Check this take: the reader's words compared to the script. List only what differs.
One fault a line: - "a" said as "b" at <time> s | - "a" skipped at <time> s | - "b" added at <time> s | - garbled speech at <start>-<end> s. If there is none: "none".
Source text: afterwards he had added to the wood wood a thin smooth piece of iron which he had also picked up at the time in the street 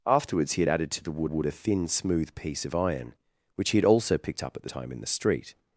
none